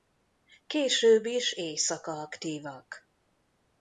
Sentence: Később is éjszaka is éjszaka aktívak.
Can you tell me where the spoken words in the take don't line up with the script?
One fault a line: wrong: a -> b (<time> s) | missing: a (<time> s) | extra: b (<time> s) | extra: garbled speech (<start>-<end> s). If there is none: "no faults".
missing: is éjszaka (2.1 s)